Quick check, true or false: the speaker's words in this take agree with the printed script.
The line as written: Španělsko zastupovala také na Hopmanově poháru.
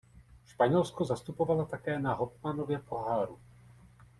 true